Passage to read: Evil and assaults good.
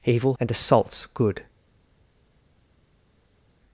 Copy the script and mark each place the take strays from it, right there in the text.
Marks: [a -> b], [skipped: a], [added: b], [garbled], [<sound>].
Evil and assaults good.